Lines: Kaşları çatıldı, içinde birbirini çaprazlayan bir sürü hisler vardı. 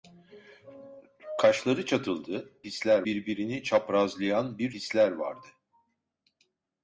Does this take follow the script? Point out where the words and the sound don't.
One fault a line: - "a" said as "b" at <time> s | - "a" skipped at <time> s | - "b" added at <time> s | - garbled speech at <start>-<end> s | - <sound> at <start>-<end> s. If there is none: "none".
- "içinde" said as "hisler" at 2.6 s
- "sürü" skipped at 4.7 s